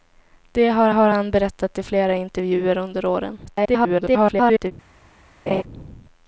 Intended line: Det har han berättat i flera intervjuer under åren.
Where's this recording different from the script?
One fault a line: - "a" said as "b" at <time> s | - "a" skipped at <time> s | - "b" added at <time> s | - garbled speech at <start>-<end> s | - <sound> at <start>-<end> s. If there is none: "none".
- "har" added at 0.9 s
- garbled speech at 3.5-4.7 s
- laugh at 5.5-5.6 s